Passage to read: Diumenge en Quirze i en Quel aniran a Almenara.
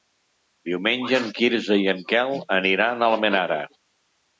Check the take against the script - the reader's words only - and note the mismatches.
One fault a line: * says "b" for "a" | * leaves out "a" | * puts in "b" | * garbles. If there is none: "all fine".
all fine